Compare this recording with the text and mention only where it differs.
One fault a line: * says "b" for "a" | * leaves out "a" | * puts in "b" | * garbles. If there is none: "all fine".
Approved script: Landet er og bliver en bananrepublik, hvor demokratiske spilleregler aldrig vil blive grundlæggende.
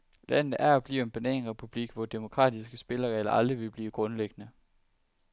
all fine